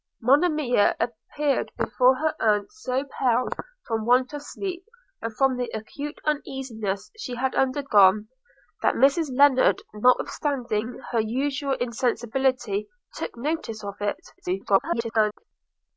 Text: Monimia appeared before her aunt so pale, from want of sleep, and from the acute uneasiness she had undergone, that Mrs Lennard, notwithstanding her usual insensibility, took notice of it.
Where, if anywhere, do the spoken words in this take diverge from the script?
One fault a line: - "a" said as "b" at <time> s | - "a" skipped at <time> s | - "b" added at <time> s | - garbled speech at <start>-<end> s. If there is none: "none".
- garbled speech at 14.4-15.4 s